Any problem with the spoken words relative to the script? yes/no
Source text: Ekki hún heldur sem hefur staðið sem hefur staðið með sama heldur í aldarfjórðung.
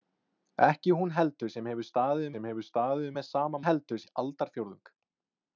no